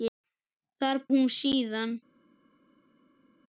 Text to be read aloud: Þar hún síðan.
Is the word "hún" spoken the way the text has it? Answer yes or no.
yes